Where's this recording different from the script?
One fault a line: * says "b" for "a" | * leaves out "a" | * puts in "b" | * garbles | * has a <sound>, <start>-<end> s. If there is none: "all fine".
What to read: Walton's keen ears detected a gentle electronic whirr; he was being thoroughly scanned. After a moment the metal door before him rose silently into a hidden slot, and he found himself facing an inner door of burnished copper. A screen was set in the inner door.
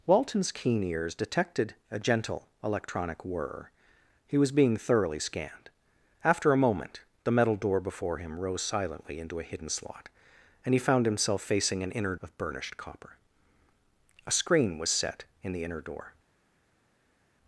* leaves out "door"